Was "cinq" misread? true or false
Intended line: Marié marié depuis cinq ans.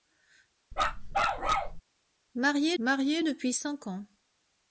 false